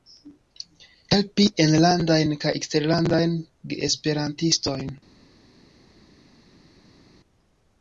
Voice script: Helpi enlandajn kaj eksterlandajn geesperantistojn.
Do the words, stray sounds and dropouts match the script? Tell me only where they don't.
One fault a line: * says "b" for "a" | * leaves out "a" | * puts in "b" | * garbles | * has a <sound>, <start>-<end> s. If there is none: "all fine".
all fine